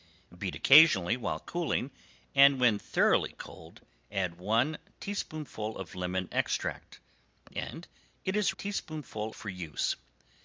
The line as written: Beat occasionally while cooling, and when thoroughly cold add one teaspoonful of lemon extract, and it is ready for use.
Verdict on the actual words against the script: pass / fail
fail